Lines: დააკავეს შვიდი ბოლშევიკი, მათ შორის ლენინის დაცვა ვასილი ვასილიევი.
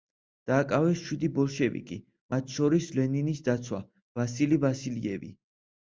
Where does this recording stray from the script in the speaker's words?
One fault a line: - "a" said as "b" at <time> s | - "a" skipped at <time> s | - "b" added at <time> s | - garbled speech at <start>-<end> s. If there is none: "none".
none